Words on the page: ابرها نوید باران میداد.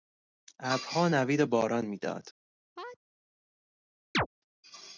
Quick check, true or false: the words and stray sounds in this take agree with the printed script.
false